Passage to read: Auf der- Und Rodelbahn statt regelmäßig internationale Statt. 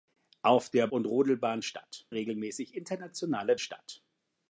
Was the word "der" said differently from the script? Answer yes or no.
no